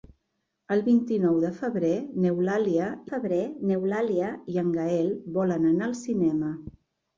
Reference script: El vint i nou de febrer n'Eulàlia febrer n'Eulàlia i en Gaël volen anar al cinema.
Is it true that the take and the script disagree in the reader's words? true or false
false